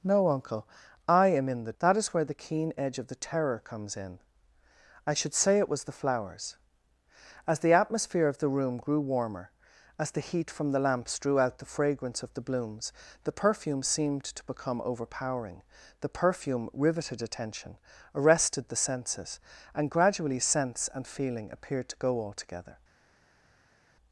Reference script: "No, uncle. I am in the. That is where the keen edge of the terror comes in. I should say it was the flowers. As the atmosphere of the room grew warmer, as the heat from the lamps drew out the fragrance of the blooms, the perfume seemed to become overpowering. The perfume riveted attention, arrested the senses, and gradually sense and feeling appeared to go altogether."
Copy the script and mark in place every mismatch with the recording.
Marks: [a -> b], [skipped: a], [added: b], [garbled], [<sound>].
"No, uncle. I am in the. That is where the keen edge of the terror comes in. I should say it was the flowers. As the atmosphere of the room grew warmer, as the heat from the lamps drew out the fragrance of the blooms, the perfume seemed to become overpowering. The perfume riveted attention, arrested the senses, and gradually sense and feeling appeared to go altogether."